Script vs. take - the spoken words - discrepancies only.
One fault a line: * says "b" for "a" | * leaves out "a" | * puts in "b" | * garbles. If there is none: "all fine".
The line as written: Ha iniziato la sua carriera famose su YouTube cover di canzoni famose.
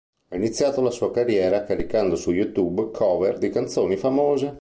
* says "caricando" for "famose"